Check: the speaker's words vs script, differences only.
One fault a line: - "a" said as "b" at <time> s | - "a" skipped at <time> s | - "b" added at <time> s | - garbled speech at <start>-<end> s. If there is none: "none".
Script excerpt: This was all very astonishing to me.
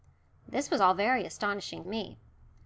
- "to" skipped at 1.8 s